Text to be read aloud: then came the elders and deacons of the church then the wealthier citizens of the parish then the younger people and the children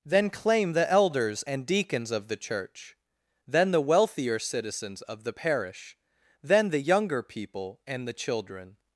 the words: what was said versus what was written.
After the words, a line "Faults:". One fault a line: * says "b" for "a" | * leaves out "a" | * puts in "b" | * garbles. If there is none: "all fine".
then claim the elders and deacons of the church then the wealthier citizens of the parish then the younger people and the children
Faults:
* says "claim" for "came"